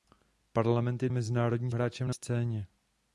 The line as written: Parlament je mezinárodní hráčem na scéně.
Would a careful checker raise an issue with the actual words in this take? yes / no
no